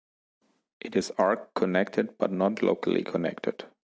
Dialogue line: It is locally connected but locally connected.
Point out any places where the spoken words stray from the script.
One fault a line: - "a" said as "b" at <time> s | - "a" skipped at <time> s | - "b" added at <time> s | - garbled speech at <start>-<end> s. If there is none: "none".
- "locally" said as "arc" at 1.2 s
- "not" added at 2.3 s